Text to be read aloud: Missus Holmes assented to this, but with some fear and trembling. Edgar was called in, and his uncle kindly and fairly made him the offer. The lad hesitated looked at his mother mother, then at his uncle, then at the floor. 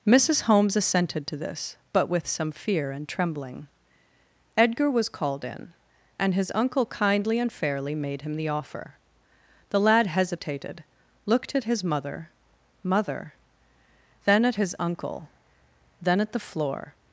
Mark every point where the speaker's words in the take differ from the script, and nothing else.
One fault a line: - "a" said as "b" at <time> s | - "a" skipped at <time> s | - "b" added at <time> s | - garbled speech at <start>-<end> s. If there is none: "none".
none